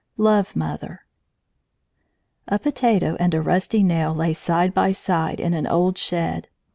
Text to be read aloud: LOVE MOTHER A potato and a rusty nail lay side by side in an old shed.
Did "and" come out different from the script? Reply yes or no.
no